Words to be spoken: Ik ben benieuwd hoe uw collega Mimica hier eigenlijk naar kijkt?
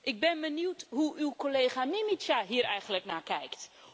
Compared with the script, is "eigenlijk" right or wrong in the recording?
right